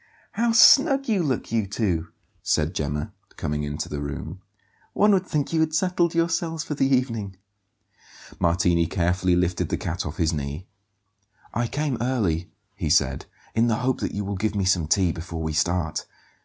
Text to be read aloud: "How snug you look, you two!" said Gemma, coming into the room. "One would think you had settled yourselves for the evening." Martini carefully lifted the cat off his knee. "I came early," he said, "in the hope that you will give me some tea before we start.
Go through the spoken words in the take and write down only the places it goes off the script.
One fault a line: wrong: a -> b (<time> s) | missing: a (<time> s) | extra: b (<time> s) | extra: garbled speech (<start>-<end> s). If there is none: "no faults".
no faults